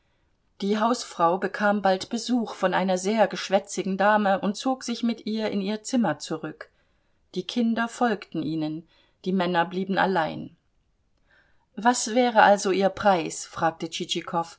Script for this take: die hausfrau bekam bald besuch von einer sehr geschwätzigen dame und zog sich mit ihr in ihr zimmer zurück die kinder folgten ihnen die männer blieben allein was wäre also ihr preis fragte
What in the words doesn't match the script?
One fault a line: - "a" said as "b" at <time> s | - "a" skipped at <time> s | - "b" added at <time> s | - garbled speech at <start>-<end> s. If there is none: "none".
none